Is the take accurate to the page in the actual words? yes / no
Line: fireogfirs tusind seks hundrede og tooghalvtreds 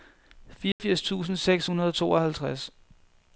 yes